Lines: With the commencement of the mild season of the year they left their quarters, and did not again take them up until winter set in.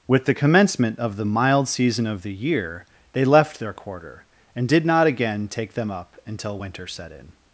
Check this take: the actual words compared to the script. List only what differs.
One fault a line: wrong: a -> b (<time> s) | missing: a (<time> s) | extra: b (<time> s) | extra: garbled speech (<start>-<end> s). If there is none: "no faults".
wrong: quarters -> quarter (3.7 s)